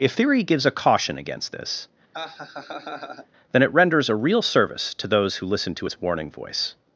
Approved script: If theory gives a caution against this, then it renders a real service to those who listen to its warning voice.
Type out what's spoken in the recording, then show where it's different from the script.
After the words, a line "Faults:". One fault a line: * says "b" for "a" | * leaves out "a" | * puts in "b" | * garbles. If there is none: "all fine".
If theory gives a caution against this, then it renders a real service to those who listen to its warning voice.
Faults:
all fine